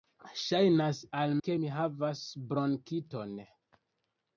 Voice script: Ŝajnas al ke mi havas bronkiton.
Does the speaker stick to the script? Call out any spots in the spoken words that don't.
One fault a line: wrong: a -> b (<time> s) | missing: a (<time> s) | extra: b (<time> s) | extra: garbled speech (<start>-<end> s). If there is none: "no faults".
no faults